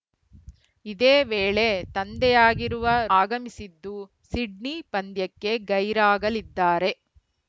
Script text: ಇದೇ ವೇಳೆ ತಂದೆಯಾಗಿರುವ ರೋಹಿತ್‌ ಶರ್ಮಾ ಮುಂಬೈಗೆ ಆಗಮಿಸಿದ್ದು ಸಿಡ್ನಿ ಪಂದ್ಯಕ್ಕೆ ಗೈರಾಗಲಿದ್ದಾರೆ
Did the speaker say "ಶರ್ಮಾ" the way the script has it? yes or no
no